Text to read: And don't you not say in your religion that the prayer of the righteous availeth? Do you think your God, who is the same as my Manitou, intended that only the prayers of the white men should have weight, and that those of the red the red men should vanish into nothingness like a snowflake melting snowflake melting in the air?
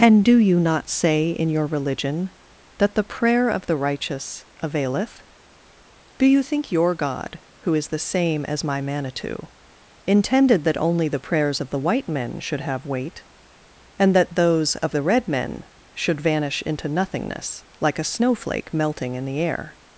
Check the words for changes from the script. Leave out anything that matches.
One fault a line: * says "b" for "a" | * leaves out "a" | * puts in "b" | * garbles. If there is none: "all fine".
* says "do" for "don't"
* leaves out "the red"
* leaves out "snowflake melting"